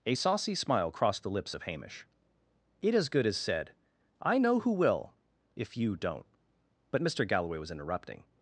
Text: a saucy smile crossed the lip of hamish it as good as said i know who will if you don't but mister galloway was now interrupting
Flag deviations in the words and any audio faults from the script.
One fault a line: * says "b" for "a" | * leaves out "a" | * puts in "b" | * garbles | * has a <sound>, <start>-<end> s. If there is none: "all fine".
* says "lips" for "lip"
* leaves out "now"